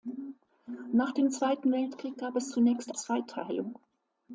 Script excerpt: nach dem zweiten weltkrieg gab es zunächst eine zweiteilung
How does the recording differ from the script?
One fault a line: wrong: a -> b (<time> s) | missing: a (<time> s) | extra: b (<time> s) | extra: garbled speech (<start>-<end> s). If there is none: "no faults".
missing: eine (3.0 s)